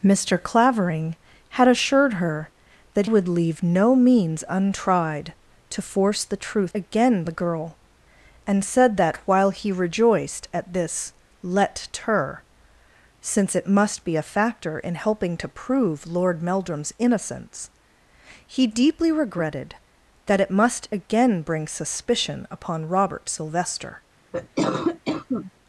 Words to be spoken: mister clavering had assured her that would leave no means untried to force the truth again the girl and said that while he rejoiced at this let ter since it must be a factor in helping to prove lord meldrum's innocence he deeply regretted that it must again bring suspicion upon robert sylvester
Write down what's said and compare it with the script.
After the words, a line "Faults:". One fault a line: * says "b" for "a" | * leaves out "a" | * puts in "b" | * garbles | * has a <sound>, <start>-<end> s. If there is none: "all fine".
mister clavering had assured her that would leave no means untried to force the truth again the girl and said that while he rejoiced at this let ter since it must be a factor in helping to prove lord meldrum's innocence he deeply regretted that it must again bring suspicion upon robert sylvester
Faults:
* has a cough, 24.3-25.5 s